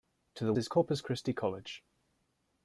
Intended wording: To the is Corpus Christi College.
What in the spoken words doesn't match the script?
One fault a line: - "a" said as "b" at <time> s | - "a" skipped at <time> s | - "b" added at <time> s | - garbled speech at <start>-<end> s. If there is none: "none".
none